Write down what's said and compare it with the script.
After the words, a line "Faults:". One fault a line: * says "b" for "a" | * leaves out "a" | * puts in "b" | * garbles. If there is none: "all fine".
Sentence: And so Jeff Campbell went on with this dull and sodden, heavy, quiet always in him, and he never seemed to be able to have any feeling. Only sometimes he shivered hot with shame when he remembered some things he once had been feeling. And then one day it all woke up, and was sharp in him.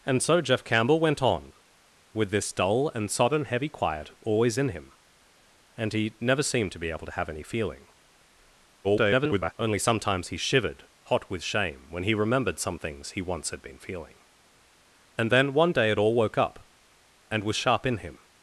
And so Jeff Campbell went on with this dull and sodden, heavy, quiet always in him, and he never seemed to be able to have any feeling. [garbled] Only sometimes he shivered hot with shame when he remembered some things he once had been feeling. And then one day it all woke up, and was sharp in him.
Faults:
* garbles